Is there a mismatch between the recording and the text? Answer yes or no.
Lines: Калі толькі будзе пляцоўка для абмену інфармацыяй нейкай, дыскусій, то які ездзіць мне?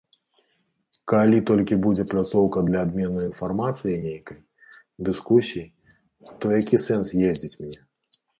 yes